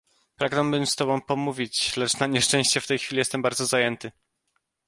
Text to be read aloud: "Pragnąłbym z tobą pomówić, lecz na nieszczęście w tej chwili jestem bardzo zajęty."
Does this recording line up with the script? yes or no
yes